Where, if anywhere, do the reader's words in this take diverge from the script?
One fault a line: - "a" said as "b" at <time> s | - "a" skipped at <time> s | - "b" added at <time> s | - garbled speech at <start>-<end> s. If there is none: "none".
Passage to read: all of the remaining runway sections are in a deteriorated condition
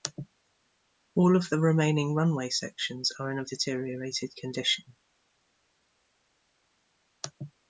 none